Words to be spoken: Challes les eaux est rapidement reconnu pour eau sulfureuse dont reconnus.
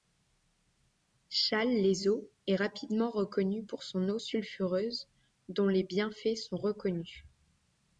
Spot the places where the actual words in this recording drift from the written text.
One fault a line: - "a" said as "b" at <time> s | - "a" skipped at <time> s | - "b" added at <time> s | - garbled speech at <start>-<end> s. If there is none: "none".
- "son" added at 3.8 s
- "les bienfaits sont" added at 5.7 s